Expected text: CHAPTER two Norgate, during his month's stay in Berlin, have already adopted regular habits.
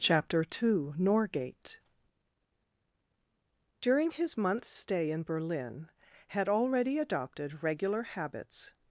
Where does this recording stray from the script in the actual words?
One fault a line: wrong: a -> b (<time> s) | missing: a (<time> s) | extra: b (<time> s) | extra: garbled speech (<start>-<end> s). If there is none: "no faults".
wrong: have -> had (6.3 s)